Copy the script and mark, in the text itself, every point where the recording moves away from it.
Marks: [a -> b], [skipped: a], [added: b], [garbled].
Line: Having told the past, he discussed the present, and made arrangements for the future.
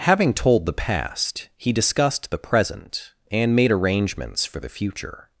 Having told the past, he discussed the present, and made arrangements for the future.